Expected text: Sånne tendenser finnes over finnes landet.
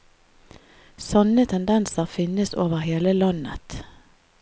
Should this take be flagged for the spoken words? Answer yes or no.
yes